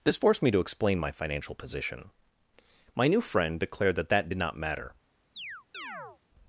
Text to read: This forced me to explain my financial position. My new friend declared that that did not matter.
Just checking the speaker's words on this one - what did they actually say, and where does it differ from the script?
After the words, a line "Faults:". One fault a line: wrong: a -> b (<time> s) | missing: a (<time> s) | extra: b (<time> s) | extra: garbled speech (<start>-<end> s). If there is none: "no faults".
This forced me to explain my financial position. My new friend declared that that did not matter.
Faults:
no faults